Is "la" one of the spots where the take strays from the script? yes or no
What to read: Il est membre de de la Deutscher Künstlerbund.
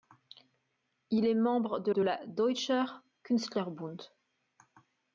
no